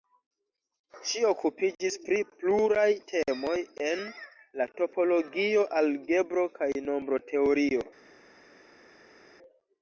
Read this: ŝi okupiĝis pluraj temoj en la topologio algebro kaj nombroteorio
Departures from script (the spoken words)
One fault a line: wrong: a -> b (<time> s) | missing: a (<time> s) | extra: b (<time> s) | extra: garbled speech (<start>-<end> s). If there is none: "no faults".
extra: pri (2.0 s)